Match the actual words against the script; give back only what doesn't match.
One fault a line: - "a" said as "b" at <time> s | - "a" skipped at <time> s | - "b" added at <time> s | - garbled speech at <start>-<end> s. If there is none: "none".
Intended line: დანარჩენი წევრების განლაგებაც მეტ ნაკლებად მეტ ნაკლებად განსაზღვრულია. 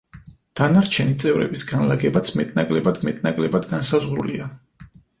none